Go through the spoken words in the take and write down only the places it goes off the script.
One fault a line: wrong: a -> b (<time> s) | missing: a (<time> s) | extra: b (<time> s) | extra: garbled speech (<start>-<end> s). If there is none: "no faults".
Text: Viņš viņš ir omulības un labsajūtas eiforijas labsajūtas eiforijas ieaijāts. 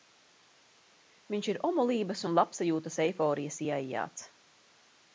missing: viņš (1.5 s)
missing: labsajūtas eiforijas (3.6 s)